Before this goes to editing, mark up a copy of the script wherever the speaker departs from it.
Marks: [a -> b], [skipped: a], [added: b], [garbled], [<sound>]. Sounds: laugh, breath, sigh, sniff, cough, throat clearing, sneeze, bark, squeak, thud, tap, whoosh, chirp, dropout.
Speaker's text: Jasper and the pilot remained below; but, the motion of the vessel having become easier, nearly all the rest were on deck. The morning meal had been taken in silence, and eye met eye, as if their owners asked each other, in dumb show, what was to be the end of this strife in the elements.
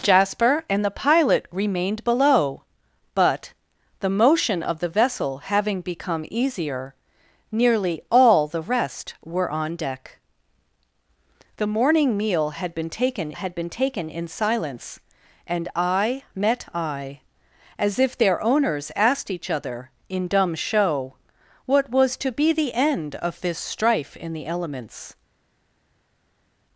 Jasper and the pilot remained below; but, the motion of the vessel having become easier, nearly all the rest were on deck. The morning meal had been taken [added: had been taken] in silence, and eye met eye, as if their owners asked each other, in dumb show, what was to be the end of this strife in the elements.